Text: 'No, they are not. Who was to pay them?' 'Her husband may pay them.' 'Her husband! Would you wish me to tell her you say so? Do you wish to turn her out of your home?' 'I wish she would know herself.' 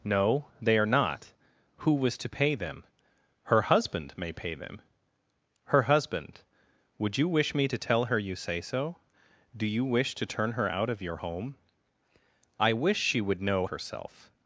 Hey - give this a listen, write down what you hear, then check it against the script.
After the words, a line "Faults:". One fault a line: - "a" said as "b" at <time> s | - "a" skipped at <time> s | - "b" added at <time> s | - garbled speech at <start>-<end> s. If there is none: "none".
'No, they are not. Who was to pay them?' 'Her husband may pay them.' 'Her husband! Would you wish me to tell her you say so? Do you wish to turn her out of your home?' 'I wish she would know herself.'
Faults:
none